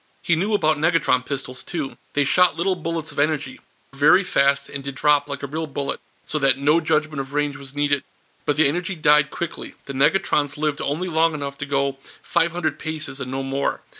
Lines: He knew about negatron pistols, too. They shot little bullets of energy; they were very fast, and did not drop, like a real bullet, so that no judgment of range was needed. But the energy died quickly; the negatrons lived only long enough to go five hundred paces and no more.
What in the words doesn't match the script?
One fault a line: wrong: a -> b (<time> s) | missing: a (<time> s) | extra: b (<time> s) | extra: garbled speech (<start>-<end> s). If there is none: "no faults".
missing: they were (3.6 s)
missing: not (5.0 s)